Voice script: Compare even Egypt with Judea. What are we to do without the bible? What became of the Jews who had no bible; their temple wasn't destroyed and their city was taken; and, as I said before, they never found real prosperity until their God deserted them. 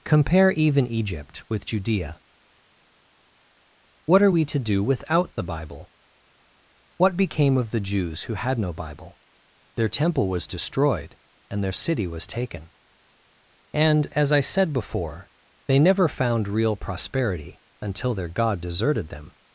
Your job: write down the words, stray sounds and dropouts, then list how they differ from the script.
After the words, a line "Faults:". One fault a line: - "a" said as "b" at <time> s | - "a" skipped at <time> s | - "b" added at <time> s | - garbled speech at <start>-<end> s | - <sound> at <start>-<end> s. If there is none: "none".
Compare even Egypt with Judea. What are we to do without the bible? What became of the Jews who had no bible; their temple was destroyed and their city was taken; and, as I said before, they never found real prosperity until their God deserted them.
Faults:
- "wasn't" said as "was" at 10.3 s